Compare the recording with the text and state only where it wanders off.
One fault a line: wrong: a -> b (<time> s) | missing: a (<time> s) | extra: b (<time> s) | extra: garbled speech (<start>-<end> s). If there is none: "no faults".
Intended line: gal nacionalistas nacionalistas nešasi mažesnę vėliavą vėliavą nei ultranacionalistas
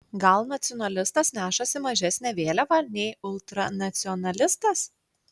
missing: nacionalistas (1.3 s)
missing: vėliavą (2.8 s)